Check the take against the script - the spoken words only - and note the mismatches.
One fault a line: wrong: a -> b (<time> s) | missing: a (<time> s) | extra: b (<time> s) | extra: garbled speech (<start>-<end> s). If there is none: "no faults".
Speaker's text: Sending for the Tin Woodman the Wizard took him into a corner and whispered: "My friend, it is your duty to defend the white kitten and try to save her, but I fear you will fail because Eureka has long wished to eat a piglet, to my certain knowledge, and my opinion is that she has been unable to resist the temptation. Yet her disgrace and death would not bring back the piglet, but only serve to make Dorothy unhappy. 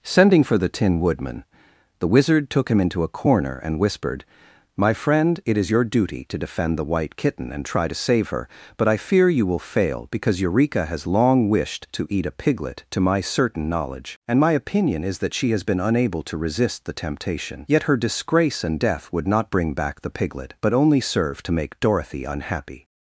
no faults